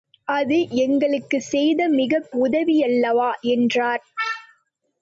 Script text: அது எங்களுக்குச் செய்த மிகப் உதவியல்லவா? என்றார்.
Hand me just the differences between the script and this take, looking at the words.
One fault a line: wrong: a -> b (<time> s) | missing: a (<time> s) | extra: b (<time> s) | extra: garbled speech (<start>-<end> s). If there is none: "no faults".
no faults